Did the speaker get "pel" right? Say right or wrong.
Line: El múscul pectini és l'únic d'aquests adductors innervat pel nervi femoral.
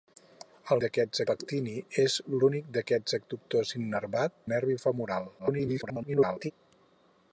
wrong